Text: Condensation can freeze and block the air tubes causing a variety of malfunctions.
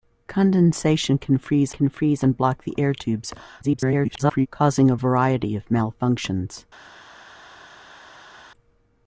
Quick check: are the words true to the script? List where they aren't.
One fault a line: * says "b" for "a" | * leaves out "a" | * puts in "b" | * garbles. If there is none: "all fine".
* puts in "can freeze"
* garbles